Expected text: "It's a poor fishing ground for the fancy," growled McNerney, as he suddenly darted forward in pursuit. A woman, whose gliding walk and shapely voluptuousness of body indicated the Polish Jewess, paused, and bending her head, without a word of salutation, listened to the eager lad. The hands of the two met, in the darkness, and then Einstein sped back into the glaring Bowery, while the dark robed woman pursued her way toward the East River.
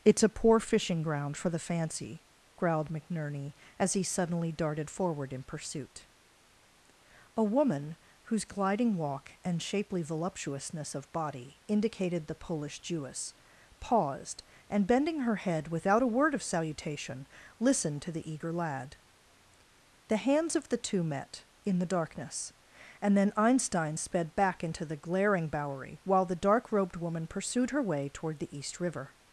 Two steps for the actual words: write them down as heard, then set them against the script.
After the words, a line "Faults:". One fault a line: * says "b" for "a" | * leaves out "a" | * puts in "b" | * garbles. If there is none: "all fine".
"It's a poor fishing ground for the fancy," growled McNerney, as he suddenly darted forward in pursuit. A woman, whose gliding walk and shapely voluptuousness of body indicated the Polish Jewess, paused, and bending her head, without a word of salutation, listened to the eager lad. The hands of the two met, in the darkness, and then Einstein sped back into the glaring Bowery, while the dark robed woman pursued her way toward the East River.
Faults:
all fine